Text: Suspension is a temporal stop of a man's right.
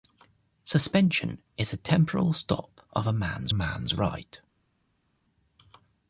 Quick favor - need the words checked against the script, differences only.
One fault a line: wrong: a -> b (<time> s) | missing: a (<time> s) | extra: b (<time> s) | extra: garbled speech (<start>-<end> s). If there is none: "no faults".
extra: man's (3.5 s)